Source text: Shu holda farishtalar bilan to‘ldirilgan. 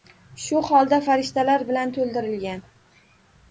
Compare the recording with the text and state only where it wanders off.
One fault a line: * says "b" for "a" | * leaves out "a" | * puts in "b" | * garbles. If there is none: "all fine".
all fine